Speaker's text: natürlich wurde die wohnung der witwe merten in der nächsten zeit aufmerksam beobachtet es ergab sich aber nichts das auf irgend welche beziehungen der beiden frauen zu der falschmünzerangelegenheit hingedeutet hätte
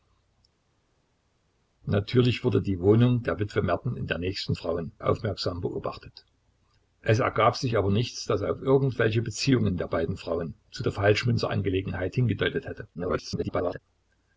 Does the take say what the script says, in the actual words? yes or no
no